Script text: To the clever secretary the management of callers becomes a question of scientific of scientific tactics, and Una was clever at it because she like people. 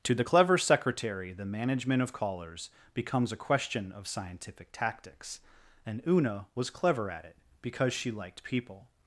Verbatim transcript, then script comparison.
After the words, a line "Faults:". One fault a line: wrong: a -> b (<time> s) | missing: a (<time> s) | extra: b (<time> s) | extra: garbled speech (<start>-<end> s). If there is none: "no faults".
To the clever secretary the management of callers becomes a question of scientific tactics, and Una was clever at it because she liked people.
Faults:
missing: of scientific (4.7 s)
wrong: like -> liked (8.1 s)